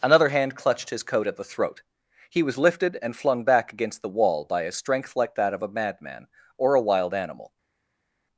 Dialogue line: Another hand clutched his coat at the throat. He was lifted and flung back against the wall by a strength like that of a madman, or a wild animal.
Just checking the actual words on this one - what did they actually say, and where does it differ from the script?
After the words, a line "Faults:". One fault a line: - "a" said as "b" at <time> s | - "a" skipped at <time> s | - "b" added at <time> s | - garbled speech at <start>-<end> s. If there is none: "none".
Another hand clutched his coat at the throat. He was lifted and flung back against the wall by a strength like that of a madman, or a wild animal.
Faults:
none